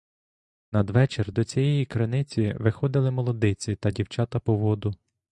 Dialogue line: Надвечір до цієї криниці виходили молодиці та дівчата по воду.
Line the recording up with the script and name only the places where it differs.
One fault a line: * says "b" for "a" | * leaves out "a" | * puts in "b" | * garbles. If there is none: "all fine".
all fine